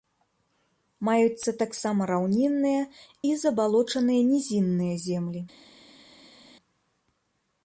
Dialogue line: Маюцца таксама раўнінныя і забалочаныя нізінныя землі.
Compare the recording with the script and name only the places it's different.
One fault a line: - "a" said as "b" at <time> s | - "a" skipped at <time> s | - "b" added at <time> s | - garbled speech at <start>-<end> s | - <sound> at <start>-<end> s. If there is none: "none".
none